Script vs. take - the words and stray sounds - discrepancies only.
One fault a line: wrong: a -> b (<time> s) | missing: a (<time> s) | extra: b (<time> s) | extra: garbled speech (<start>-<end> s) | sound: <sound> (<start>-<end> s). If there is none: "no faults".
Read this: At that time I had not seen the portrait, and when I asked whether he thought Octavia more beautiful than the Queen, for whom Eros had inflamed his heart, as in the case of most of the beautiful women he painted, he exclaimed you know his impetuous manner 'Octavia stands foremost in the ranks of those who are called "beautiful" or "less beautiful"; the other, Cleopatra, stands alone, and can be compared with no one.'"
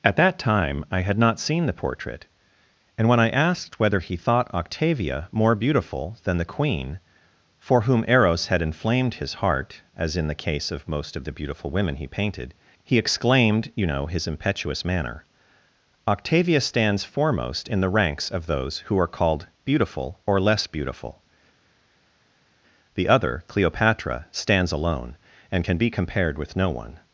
no faults